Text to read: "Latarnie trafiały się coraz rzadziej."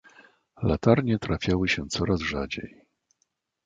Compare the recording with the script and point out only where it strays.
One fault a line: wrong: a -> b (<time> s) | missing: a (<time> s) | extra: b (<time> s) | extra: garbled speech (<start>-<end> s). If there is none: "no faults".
no faults